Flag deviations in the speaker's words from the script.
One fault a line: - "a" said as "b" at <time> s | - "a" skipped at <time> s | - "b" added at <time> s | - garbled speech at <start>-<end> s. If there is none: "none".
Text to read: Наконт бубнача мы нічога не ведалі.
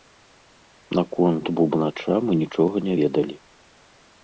none